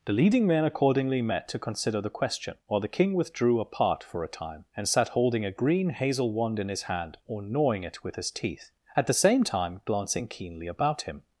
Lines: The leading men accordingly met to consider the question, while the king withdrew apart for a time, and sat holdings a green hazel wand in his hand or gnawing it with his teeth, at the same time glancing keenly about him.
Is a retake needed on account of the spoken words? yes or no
yes